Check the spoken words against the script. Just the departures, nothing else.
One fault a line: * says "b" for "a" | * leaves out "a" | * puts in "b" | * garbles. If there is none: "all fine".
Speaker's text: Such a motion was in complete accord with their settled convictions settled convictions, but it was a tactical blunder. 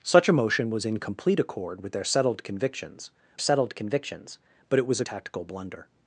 all fine